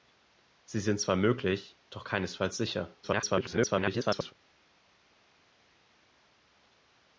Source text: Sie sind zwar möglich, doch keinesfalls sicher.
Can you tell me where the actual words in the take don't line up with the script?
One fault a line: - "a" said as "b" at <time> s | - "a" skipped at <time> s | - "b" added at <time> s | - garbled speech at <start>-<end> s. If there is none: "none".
- garbled speech at 3.0-4.3 s